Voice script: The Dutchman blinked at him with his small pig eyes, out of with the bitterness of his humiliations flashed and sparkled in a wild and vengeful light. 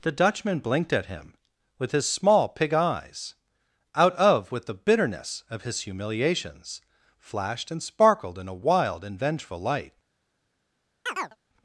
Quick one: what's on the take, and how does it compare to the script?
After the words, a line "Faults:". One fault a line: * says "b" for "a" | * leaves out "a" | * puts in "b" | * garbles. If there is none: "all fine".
The Dutchman blinked at him with his small pig eyes, out of with the bitterness of his humiliations flashed and sparkled in a wild and vengeful light.
Faults:
all fine